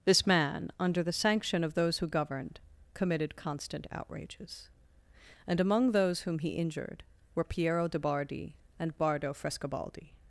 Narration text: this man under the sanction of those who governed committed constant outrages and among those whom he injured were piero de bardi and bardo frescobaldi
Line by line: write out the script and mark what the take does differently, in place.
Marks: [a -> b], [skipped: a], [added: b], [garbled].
this man under the sanction of those who governed committed constant outrages and among those whom he injured were piero de bardi and bardo frescobaldi